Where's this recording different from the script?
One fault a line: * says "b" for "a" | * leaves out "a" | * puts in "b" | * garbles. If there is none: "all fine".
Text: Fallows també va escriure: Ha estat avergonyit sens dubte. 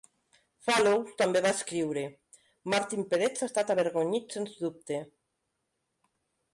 * puts in "Martin Peretz"